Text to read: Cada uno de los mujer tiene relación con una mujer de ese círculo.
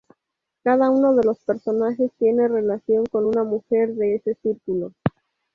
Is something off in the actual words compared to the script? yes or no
yes